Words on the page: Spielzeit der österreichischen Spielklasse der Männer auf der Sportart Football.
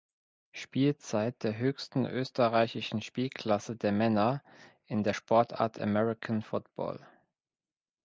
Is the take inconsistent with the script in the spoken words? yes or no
yes